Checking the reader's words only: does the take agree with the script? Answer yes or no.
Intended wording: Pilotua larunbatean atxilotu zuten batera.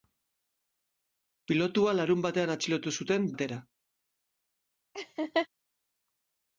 yes